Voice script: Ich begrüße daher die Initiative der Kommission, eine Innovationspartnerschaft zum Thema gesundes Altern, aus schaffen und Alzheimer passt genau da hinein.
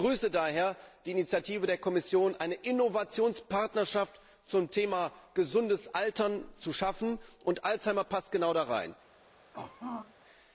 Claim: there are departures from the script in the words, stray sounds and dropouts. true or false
true